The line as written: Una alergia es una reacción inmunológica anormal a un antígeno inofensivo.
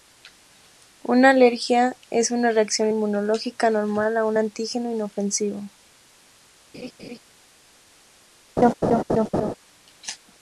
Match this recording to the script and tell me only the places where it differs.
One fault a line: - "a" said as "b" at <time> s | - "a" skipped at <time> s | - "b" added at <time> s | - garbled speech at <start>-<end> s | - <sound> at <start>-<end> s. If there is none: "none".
- laugh at 6.7-7.2 s
- laugh at 8.6-9.5 s